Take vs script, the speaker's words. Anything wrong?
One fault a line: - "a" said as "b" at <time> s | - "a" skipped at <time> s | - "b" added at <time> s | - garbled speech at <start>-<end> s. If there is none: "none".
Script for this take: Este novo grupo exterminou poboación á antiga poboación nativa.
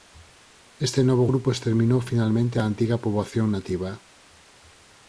- "poboación" said as "finalmente" at 2.1 s